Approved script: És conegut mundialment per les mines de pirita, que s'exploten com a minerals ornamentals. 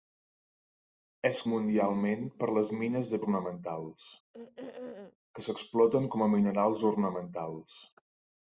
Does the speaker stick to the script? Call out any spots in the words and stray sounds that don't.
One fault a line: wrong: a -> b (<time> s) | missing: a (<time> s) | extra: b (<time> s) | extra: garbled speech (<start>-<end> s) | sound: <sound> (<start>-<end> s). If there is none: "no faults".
missing: conegut (1.4 s)
wrong: pirita -> ornamentals (3.2 s)
sound: throat clearing (4.3-5.2 s)